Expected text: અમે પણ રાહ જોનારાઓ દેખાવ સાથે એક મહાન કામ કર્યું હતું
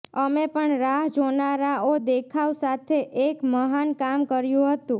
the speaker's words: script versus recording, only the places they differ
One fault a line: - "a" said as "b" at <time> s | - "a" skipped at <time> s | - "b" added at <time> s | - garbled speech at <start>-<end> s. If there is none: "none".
none